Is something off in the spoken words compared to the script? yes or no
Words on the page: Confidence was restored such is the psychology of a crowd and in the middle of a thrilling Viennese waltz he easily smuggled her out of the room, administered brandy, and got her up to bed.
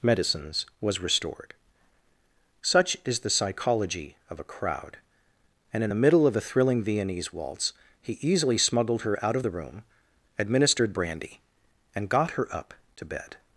yes